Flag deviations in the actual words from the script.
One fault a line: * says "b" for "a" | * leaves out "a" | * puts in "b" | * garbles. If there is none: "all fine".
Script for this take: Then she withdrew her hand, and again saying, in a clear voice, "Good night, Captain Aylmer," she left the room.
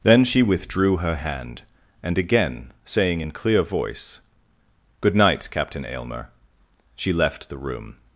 * leaves out "a"